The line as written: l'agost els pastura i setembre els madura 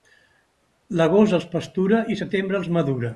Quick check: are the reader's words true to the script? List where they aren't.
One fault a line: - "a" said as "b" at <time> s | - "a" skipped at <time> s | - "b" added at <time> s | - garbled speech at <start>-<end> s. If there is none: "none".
none